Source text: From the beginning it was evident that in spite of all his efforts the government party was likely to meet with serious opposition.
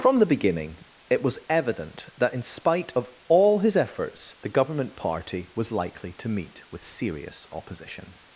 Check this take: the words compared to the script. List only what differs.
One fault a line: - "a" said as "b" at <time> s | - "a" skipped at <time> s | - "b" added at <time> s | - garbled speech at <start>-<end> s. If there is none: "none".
none